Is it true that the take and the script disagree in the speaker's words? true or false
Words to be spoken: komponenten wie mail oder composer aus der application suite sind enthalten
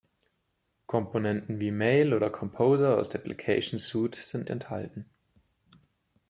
false